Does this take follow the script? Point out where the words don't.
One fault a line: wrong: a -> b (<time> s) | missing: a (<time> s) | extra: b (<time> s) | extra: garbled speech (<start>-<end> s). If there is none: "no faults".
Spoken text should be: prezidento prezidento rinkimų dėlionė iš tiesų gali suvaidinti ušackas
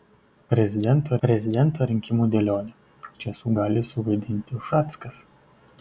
no faults